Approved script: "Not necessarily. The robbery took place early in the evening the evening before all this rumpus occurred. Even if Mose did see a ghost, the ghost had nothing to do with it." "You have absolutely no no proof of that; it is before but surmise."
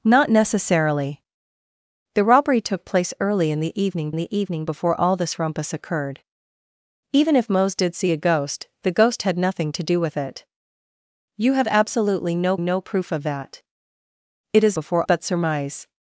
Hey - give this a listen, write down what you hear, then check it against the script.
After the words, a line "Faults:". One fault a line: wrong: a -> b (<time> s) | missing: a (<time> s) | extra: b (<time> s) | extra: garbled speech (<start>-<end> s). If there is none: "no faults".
"Not necessarily. The robbery took place early in the evening the evening before all this rumpus occurred. Even if Mose did see a ghost, the ghost had nothing to do with it." "You have absolutely no no proof of that; it is before but surmise."
Faults:
no faults